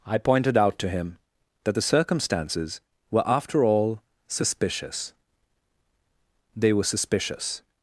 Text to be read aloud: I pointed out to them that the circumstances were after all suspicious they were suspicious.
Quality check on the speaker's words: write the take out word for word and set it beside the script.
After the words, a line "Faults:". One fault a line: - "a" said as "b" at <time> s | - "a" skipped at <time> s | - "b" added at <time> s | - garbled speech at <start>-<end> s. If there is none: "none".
I pointed out to him that the circumstances were after all suspicious they were suspicious.
Faults:
- "them" said as "him" at 0.9 s